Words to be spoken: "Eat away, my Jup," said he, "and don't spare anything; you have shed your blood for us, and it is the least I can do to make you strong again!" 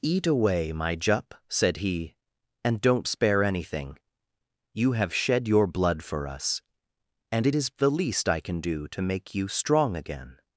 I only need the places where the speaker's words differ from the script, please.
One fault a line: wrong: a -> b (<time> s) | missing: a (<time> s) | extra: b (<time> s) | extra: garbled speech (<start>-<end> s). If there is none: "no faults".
no faults